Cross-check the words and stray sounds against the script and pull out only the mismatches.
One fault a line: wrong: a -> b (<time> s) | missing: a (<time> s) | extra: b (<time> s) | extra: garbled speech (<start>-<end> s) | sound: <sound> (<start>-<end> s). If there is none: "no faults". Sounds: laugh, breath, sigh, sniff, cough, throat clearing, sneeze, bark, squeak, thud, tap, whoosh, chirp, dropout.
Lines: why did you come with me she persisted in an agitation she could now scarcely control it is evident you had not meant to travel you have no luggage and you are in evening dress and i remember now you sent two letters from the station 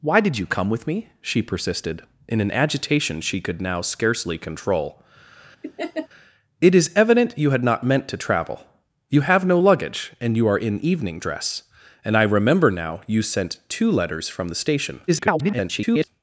sound: laugh (5.6-6.1 s)
extra: garbled speech (15.1-16.1 s)